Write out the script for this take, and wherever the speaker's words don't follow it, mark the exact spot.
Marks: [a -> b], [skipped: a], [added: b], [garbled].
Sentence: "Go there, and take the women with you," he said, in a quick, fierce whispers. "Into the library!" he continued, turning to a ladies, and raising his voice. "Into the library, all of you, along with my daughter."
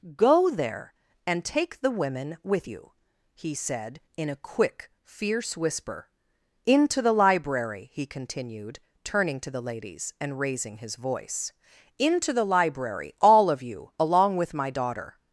"Go there, and take the women with you," he said, in a quick, fierce [whispers. -> whisper] "Into the library!" he continued, turning to [a -> the] ladies, and raising his voice. "Into the library, all of you, along with my daughter."